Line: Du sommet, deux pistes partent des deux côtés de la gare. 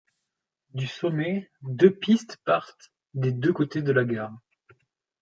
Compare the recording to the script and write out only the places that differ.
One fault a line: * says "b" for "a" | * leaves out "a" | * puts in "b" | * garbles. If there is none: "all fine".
all fine